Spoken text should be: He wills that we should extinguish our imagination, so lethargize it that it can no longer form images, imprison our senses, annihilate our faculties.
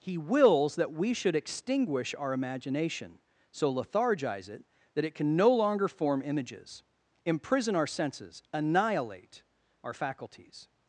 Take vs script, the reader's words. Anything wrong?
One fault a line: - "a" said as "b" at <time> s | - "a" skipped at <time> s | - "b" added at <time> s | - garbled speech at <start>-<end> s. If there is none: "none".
none